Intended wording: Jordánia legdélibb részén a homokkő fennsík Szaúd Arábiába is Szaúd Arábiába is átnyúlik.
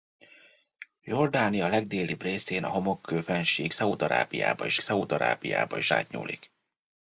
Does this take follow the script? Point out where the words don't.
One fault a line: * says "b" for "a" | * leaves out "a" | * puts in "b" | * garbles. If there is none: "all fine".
all fine